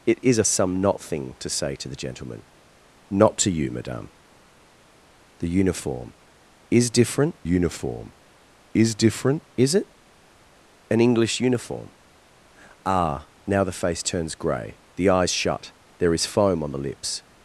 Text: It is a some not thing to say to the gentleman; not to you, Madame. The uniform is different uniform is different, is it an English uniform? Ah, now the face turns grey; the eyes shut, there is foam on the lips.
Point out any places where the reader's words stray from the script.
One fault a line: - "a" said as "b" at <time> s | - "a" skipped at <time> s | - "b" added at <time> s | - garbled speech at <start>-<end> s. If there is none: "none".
none